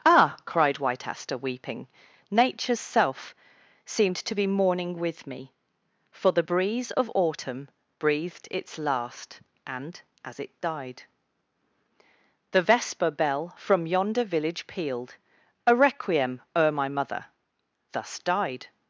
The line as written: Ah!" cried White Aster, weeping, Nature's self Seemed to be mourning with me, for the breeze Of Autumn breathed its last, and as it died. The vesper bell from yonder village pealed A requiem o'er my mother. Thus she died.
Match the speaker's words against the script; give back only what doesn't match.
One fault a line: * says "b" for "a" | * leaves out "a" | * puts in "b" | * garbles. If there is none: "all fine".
* leaves out "she"